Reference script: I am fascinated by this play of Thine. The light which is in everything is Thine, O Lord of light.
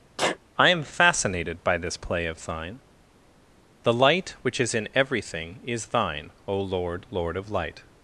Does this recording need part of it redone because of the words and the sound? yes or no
yes